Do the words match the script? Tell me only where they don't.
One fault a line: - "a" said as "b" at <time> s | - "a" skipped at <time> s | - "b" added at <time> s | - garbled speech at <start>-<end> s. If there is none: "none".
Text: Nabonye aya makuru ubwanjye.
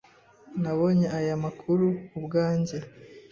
none